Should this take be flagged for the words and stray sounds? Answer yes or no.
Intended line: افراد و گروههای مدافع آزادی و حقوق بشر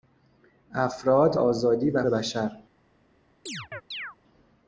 yes